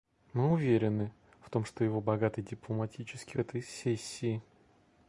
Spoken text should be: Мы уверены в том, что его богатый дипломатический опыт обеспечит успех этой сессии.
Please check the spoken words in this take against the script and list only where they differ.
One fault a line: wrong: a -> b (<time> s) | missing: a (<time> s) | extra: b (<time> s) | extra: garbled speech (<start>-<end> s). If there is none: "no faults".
missing: опыт обеспечит успех (3.4 s)